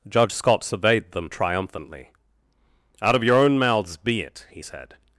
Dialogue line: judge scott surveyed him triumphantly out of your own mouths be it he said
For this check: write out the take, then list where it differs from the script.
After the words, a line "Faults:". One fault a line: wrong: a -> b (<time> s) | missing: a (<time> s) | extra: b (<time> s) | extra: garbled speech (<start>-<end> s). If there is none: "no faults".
judge scott surveyed them triumphantly out of your own mouths be it he said
Faults:
wrong: him -> them (1.1 s)